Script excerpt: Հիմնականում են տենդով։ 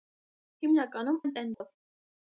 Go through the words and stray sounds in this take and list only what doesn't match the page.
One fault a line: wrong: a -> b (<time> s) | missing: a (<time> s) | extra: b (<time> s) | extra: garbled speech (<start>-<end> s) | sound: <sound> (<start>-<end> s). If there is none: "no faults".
sound: dropout (1.5-1.6 s)